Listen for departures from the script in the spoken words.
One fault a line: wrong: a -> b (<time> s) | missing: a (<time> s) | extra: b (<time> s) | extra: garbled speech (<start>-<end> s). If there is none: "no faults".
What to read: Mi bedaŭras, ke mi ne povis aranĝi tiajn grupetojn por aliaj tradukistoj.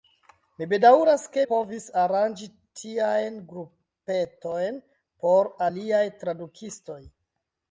missing: mi ne (1.4 s)